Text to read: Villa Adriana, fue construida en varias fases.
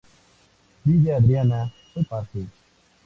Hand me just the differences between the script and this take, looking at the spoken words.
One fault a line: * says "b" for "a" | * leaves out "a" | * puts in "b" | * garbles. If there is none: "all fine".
* leaves out "construida en varias"